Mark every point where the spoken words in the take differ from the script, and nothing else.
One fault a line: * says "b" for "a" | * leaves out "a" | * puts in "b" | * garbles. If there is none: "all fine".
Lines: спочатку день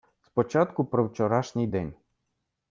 * puts in "про вчорашній"